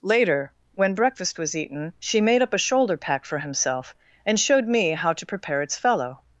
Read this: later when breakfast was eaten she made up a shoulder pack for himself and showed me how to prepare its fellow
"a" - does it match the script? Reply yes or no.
yes